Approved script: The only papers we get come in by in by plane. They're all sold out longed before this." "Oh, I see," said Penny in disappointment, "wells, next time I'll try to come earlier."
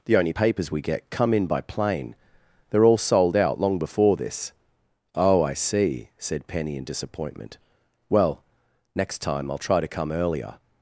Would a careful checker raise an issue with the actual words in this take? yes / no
yes